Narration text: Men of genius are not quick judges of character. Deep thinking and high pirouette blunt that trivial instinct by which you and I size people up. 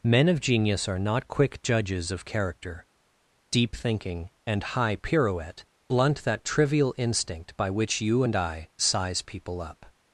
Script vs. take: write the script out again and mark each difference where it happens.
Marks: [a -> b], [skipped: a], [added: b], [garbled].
Men of genius are not quick judges of character. Deep thinking and high pirouette blunt that trivial instinct by which you and I size people up.